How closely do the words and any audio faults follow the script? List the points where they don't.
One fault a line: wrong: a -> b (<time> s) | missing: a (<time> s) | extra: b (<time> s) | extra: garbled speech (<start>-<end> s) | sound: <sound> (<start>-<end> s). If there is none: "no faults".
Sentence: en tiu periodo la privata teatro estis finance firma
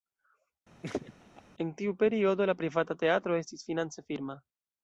sound: laugh (0.8-1.4 s)